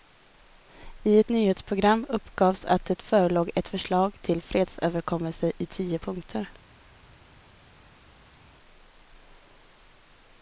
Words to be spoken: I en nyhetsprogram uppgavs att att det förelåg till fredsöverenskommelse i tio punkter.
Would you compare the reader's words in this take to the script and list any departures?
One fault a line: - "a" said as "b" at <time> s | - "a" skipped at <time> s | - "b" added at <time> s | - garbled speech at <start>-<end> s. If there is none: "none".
- "en" said as "ett" at 1.2 s
- "att" skipped at 2.9 s
- "ett förslag" added at 3.6 s